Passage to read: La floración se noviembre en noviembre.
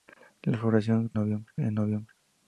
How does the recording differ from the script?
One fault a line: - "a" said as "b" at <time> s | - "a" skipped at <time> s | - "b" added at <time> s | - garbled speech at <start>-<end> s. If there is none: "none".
none